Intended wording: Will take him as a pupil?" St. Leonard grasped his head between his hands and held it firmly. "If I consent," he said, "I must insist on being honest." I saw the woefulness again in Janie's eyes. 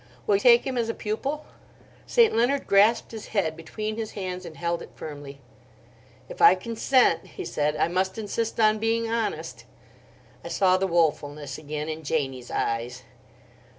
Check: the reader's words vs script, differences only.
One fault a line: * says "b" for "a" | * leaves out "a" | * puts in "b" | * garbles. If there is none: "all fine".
all fine